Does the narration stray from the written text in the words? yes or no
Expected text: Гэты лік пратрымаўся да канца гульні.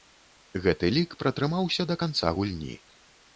no